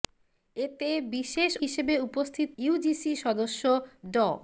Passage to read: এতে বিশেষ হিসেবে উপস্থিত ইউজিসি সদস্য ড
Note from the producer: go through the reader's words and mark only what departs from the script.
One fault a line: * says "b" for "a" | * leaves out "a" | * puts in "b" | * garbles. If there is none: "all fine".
all fine